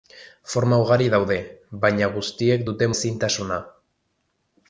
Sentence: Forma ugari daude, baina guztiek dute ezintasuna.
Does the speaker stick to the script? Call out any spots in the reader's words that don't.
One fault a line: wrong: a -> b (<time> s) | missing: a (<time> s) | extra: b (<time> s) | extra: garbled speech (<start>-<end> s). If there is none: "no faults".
no faults